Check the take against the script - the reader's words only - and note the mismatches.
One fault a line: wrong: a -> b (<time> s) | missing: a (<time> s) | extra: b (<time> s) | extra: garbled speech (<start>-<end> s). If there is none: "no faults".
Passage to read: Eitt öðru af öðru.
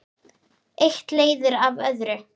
wrong: öðru -> leiðir (1.2 s)